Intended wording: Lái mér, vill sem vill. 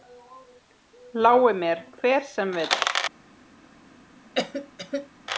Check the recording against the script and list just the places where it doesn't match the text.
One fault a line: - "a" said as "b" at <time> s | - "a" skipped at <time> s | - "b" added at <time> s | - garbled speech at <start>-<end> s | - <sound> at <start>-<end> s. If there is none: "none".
- "vill" said as "hver" at 2.0 s
- cough at 4.4-5.1 s